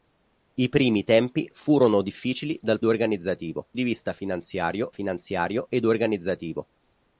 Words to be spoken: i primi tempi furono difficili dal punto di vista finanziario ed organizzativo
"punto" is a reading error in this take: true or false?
true